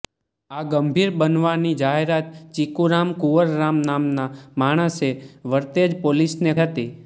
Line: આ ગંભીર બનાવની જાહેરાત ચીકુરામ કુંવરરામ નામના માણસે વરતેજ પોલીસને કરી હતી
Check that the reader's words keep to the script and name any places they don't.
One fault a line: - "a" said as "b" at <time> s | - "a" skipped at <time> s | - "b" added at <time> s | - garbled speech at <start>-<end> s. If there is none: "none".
- "કરી" skipped at 6.5 s